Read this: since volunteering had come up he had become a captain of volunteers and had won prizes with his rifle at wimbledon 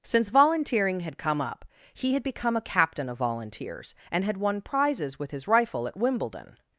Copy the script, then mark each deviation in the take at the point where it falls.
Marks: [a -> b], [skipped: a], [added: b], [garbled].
since volunteering had come up he had become a captain of volunteers and had won prizes with his rifle at wimbledon